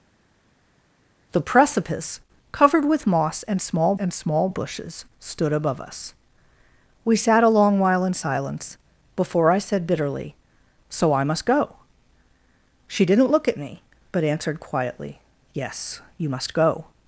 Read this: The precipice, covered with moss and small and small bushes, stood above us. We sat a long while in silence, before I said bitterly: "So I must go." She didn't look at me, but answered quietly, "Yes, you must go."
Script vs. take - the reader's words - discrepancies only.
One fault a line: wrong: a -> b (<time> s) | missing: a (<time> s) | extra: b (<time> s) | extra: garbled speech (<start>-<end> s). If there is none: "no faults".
no faults